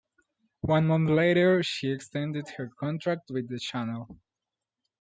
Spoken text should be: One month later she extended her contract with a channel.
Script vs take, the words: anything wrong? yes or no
yes